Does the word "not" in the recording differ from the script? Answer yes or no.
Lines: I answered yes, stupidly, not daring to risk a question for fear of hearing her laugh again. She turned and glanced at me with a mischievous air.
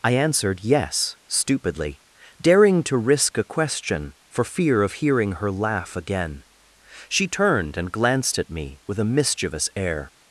yes